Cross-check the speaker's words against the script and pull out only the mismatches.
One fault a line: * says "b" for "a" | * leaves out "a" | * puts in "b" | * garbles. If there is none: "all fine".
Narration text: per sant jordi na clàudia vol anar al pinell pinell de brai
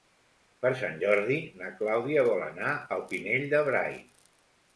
* leaves out "pinell"